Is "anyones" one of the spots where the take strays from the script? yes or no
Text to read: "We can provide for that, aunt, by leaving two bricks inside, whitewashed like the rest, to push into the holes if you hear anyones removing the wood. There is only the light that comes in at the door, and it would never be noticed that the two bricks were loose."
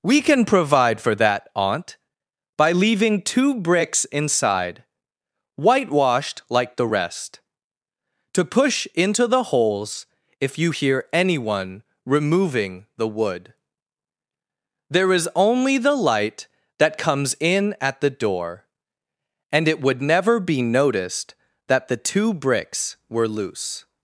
yes